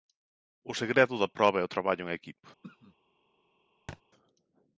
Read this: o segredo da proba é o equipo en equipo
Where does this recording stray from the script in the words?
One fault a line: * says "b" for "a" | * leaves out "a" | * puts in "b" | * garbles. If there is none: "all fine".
* says "traballo" for "equipo"